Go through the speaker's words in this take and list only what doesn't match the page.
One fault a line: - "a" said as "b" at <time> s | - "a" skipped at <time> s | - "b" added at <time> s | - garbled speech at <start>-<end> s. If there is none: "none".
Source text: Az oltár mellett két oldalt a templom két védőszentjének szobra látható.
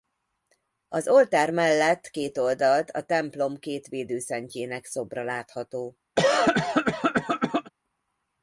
none